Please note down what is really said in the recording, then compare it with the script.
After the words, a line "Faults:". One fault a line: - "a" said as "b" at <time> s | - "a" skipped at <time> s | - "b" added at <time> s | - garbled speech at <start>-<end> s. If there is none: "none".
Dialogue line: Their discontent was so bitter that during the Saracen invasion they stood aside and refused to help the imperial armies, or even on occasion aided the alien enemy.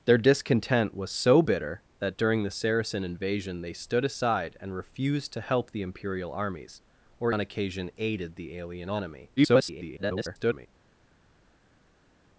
Their discontent was so bitter that during the Saracen invasion they stood aside and refused to help the imperial armies, or on occasion aided the alien enemy. [garbled]
Faults:
- "even" skipped at 7.3 s
- garbled speech at 9.4-10.7 s